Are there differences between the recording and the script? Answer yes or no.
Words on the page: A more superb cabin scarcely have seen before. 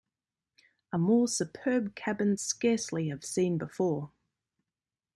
no